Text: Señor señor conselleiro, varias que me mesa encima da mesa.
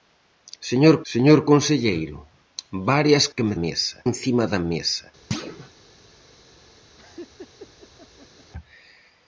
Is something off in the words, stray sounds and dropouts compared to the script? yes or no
yes